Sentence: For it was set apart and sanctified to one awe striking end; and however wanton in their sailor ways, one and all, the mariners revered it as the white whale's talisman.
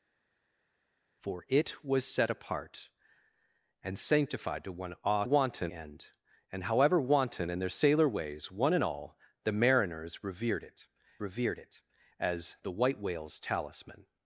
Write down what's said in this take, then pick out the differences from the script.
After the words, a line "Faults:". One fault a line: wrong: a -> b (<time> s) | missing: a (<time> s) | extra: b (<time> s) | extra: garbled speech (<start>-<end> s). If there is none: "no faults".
For it was set apart and sanctified to one awe wanton end; and however wanton in their sailor ways, one and all, the mariners revered it revered it as the white whale's talisman.
Faults:
wrong: striking -> wanton (5.2 s)
extra: revered it (11.2 s)